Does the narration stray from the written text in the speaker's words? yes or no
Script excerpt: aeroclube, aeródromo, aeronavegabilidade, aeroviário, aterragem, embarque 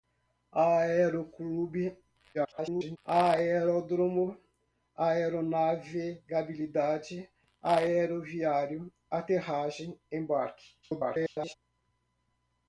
yes